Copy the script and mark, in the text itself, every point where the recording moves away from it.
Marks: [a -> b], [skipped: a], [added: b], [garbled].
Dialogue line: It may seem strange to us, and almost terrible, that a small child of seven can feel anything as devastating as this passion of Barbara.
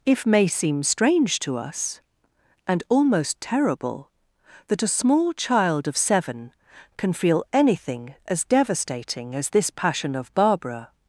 [It -> If] may seem strange to us, and almost terrible, that a small child of seven can feel anything as devastating as this passion of Barbara.